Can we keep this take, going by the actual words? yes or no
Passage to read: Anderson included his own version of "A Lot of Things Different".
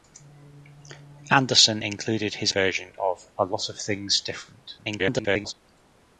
no